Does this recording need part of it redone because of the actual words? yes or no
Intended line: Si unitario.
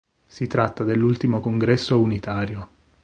yes